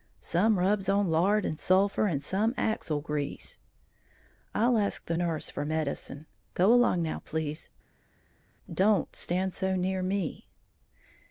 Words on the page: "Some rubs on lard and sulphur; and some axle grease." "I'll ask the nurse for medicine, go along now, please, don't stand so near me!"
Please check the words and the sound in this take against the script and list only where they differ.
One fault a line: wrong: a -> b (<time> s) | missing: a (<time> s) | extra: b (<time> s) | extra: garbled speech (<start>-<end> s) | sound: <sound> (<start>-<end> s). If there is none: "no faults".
no faults